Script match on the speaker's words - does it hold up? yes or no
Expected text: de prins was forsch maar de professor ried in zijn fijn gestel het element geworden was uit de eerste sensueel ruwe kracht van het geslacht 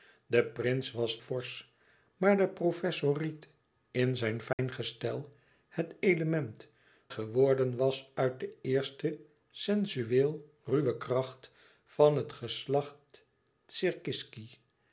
yes